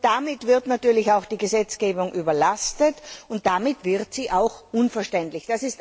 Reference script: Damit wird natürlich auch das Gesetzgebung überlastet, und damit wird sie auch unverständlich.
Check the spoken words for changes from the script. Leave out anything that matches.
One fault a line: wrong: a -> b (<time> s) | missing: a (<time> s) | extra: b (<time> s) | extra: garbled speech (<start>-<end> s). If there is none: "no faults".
wrong: das -> die (1.2 s)